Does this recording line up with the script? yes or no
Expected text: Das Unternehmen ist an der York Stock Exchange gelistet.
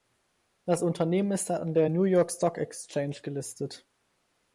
no